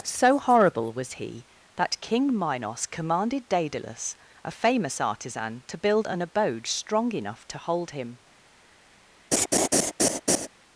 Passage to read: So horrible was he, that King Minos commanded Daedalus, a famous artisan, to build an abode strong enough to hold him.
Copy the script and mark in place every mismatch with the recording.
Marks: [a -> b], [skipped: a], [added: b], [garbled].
So horrible was he, that King Minos commanded Daedalus, a famous artisan, to build an abode strong enough to hold him.